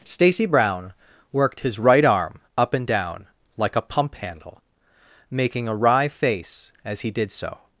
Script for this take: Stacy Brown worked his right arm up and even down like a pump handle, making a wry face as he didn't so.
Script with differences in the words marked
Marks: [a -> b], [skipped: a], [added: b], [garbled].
Stacy Brown worked his right arm up and [skipped: even] down like a pump handle, making a wry face as he [didn't -> did] so.